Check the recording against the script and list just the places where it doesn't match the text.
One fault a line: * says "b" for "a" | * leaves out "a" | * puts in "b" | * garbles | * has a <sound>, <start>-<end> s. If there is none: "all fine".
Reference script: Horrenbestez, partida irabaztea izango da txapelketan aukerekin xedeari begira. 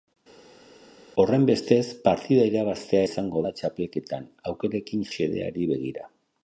all fine